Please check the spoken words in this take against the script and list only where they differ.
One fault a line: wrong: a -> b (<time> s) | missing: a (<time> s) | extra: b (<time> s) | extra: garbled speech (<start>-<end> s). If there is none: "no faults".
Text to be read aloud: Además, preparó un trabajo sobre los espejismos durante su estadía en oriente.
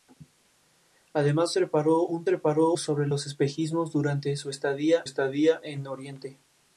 wrong: trabajo -> preparó (2.2 s)
extra: estadía (5.0 s)